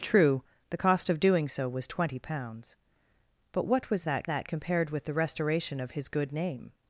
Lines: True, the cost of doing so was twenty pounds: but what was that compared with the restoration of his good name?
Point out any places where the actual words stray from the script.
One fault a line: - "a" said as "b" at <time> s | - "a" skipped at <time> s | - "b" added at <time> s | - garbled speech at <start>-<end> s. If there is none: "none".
- "that" added at 4.2 s